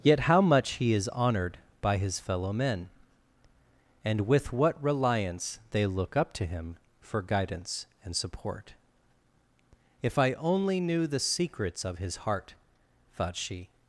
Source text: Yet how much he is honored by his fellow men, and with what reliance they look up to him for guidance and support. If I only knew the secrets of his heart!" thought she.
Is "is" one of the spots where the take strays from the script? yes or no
no